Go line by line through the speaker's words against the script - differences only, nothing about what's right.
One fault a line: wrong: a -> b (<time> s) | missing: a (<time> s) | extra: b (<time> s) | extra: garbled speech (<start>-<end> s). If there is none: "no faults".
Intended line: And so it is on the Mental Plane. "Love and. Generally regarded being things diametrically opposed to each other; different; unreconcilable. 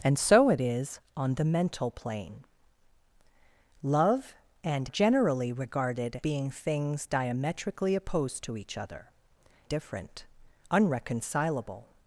no faults